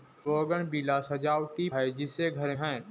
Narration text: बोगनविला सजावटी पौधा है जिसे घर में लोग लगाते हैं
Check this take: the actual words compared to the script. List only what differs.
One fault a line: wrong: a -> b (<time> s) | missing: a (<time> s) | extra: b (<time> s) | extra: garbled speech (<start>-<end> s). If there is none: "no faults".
missing: पौधा (1.7 s)
missing: में लोग लगाते (2.5 s)